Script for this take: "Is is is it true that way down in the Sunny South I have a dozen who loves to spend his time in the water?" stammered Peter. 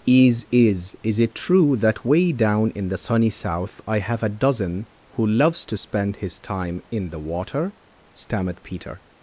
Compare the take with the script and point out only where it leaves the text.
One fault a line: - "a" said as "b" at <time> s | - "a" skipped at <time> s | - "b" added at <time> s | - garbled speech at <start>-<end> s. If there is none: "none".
none